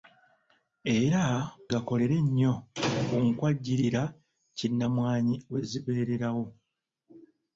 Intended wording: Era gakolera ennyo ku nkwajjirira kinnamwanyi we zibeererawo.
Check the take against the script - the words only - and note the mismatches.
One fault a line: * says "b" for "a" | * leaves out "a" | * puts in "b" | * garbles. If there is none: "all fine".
all fine